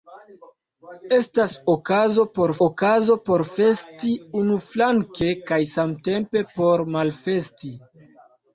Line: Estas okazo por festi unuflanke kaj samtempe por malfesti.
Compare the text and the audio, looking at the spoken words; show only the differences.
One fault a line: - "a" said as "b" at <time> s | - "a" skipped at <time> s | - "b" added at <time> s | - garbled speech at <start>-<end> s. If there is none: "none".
- "okazo por" added at 2.7 s